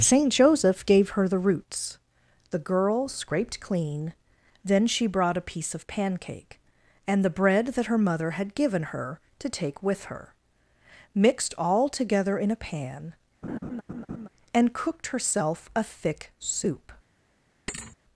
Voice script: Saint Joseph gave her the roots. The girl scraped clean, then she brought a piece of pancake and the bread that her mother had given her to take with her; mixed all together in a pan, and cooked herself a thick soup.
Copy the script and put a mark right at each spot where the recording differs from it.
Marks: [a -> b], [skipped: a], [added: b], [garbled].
Saint Joseph gave her the roots. The girl scraped clean, then she brought a piece of pancake and the bread that her mother had given her to take with her; mixed all together in a pan, and cooked herself a thick soup.